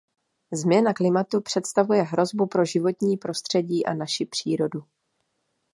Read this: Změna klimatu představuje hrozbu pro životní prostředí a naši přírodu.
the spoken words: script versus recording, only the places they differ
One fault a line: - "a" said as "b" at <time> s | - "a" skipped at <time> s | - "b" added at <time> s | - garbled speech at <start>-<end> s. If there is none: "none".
none